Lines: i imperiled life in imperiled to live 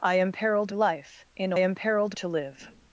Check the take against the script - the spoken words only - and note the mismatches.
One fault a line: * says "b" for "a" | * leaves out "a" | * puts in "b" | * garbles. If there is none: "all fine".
all fine